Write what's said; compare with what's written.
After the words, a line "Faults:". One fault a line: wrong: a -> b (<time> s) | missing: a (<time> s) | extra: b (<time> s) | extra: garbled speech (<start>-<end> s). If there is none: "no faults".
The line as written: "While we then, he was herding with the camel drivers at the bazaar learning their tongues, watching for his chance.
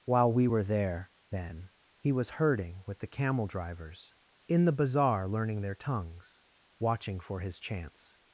"While we were there, then, he was herding with the camel drivers in the bazaar learning their tongues, watching for his chance.
Faults:
extra: were there (0.5 s)
wrong: at -> in (4.5 s)